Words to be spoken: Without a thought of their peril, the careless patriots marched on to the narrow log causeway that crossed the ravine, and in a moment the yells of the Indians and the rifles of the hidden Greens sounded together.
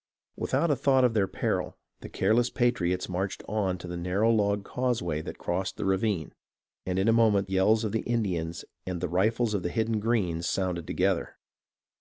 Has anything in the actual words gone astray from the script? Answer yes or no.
yes